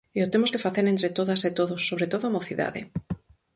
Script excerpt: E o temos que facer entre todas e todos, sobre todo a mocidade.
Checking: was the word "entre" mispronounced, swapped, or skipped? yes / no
no